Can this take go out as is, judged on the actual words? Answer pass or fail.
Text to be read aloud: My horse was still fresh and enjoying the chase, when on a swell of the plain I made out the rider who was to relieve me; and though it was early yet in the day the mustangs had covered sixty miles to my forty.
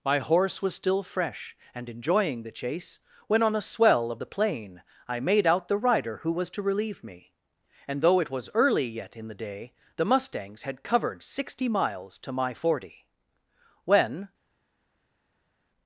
fail